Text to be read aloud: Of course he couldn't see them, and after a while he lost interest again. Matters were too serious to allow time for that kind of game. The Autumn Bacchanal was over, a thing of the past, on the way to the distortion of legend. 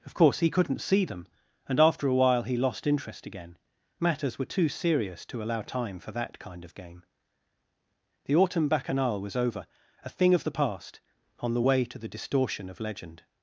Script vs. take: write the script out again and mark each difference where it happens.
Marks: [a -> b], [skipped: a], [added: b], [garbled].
Of course he couldn't see them, and after a while he lost interest again. Matters were too serious to allow time for that kind of game. The Autumn Bacchanal was over, a thing of the past, on the way to the distortion of legend.